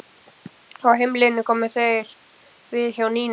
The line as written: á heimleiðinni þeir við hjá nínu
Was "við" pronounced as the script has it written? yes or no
yes